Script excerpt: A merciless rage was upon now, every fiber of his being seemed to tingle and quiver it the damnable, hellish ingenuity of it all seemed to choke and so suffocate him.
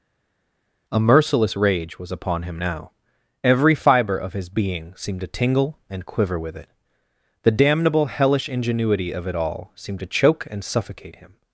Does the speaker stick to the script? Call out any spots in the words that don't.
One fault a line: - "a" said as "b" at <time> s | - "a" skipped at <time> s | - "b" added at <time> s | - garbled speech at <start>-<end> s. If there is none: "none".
- "him" added at 2.4 s
- "with" added at 6.4 s
- "so" skipped at 10.6 s